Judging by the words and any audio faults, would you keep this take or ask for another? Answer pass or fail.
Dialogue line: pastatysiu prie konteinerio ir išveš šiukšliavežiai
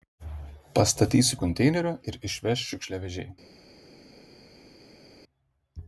fail